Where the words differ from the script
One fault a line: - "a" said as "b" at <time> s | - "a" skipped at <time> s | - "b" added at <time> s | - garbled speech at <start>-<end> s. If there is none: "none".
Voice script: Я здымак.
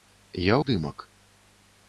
none